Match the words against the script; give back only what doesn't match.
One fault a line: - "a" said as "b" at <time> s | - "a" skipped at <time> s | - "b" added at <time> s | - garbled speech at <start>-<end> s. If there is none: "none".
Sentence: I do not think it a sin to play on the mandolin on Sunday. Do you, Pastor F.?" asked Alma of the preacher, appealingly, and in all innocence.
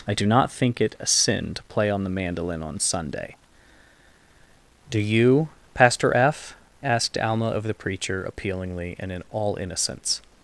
none